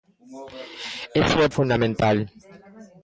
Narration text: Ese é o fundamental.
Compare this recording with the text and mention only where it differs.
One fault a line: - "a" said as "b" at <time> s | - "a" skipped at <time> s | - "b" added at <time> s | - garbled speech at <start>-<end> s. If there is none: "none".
none